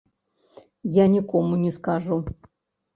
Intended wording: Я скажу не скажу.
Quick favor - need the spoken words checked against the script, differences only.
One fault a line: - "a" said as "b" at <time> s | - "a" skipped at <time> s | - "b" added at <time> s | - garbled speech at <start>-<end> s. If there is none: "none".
- "скажу" said as "нікому" at 1.0 s